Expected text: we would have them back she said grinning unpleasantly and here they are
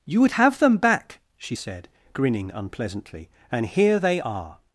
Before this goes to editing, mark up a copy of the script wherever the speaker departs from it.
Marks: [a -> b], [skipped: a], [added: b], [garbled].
[we -> you] would have them back she said grinning unpleasantly and here they are